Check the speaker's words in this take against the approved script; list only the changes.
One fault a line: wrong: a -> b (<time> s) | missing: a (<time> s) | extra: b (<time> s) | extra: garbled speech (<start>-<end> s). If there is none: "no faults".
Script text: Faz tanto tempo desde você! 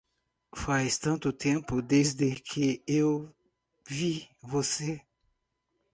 extra: que eu vi (2.4 s)